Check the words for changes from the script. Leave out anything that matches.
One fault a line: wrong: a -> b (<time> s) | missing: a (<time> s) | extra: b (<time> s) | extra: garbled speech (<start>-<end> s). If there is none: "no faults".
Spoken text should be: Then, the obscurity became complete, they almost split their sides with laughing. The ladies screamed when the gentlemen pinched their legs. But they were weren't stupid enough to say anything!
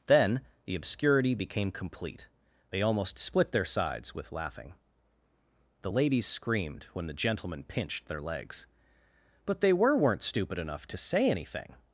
no faults